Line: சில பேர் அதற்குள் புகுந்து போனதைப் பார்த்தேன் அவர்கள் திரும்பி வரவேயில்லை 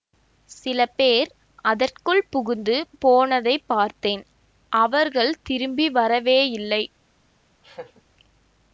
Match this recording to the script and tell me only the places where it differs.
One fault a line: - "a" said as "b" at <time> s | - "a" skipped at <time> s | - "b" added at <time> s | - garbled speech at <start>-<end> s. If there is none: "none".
none